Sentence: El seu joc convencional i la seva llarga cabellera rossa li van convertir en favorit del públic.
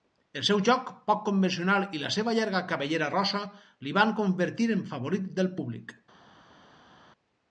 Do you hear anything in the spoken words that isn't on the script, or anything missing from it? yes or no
yes